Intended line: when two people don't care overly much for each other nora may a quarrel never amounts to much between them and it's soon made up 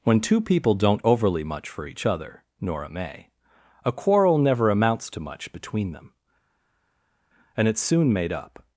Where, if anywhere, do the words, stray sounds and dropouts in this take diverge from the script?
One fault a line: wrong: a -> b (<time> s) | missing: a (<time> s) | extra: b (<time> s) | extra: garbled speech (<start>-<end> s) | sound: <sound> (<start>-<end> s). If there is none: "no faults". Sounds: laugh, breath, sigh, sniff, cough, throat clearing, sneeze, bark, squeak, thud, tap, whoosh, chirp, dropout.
missing: care (1.1 s)